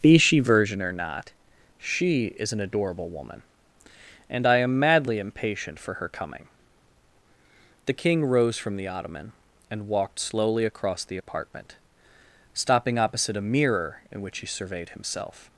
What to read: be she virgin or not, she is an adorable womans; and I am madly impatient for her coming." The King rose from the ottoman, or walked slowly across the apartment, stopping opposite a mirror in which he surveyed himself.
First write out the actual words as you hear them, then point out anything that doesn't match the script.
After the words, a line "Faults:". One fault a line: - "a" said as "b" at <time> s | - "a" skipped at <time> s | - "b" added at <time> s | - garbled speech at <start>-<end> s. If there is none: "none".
be she virgin or not, she is an adorable woman; and I am madly impatient for her coming." The King rose from the ottoman, and walked slowly across the apartment, stopping opposite a mirror in which he surveyed himself.
Faults:
- "womans" said as "woman" at 3.1 s
- "or" said as "and" at 9.7 s